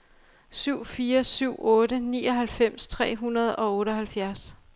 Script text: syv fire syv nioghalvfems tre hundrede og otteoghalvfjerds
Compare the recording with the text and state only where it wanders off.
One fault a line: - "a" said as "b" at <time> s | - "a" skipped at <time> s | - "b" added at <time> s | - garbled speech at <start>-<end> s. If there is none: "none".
- "otte" added at 1.6 s